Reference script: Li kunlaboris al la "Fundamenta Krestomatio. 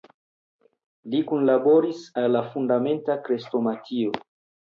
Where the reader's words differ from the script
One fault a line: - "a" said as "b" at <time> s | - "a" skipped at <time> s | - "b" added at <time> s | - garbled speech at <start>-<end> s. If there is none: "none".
none